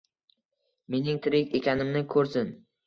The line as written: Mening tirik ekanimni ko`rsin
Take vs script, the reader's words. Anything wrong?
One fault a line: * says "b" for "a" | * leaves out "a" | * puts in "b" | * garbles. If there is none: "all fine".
all fine